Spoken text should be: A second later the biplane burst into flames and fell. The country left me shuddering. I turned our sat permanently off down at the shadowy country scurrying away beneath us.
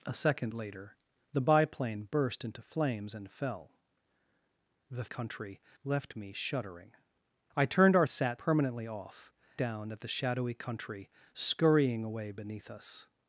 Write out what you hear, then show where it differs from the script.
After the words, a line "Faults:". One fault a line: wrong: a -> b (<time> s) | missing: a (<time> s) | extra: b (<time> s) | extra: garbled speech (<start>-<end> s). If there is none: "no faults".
A second later the biplane burst into flames and fell. The country left me shuddering. I turned our sat permanently off down at the shadowy country scurrying away beneath us.
Faults:
no faults